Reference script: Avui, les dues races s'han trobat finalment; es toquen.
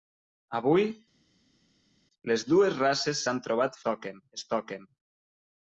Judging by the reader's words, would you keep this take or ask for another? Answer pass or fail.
fail